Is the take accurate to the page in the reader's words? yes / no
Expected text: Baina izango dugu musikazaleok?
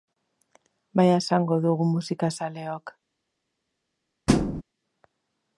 yes